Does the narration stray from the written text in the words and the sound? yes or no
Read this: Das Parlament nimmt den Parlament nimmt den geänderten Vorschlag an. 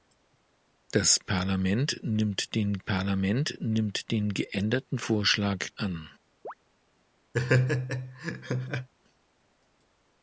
yes